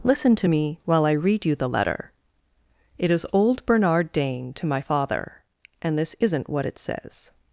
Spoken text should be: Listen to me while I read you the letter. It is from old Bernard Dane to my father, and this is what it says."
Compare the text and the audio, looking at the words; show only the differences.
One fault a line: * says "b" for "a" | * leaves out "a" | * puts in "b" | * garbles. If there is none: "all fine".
* leaves out "from"
* says "isn't" for "is"